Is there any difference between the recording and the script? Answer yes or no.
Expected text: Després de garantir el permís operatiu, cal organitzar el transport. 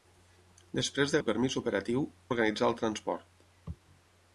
yes